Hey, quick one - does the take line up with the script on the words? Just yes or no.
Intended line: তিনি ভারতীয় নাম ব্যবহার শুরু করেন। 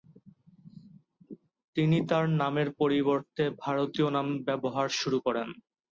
no